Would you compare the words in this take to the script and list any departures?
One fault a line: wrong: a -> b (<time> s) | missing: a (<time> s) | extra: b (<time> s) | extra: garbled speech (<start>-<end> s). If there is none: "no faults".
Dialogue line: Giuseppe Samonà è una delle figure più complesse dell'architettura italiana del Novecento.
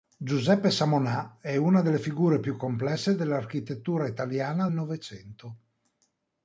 missing: del (4.7 s)